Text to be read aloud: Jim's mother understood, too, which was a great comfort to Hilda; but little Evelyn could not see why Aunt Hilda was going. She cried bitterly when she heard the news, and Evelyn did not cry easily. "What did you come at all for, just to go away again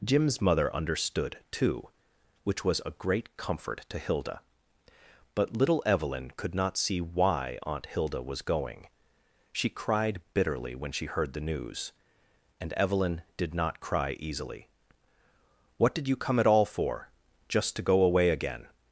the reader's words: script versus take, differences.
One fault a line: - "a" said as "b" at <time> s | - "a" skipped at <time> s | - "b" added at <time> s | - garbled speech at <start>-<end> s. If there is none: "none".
none